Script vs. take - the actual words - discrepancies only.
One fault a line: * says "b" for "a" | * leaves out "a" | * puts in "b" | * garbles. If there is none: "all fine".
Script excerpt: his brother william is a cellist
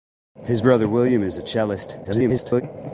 * garbles